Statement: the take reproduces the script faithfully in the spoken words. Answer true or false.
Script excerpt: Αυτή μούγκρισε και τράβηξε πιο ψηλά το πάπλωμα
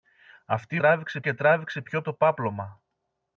false